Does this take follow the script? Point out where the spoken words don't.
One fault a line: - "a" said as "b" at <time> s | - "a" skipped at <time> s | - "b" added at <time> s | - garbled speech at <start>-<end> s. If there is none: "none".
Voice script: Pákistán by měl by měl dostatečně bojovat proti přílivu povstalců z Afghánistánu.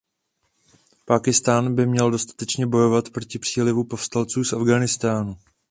- "by měl" skipped at 2.1 s